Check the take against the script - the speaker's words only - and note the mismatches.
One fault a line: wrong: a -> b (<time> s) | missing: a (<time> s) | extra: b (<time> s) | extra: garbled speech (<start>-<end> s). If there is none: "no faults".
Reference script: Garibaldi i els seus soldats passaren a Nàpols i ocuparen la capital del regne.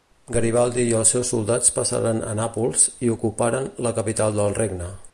no faults